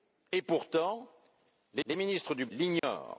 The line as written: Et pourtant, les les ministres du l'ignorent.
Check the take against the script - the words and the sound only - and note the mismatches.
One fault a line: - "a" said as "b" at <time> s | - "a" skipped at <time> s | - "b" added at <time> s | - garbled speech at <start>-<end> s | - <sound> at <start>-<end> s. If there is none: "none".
- dropout at 2.8-2.8 s